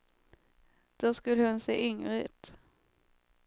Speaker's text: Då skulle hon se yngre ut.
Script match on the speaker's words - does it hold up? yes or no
yes